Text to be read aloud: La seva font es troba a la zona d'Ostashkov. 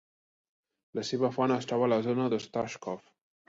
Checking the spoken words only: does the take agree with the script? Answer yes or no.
yes